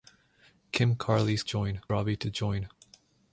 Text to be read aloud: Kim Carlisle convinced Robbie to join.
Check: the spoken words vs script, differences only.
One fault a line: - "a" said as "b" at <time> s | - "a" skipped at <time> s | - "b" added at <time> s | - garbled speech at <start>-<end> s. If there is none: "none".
- "convinced" said as "join" at 1.4 s